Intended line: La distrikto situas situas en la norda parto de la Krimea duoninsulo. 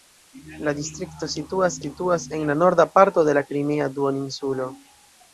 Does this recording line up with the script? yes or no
yes